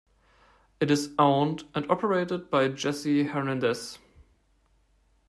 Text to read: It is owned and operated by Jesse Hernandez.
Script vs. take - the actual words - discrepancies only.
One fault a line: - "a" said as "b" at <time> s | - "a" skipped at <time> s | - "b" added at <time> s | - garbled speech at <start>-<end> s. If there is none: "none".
none